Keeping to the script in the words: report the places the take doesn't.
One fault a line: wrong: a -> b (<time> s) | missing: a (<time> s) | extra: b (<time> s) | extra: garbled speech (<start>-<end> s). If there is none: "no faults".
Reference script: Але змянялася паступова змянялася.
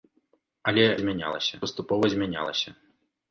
no faults